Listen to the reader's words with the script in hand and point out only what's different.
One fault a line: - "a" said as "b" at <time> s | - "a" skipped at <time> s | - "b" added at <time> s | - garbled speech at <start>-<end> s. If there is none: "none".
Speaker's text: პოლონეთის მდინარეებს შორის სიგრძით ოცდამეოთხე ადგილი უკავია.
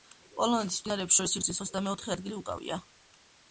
none